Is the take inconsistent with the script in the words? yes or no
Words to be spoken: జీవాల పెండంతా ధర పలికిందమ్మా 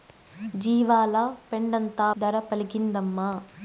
no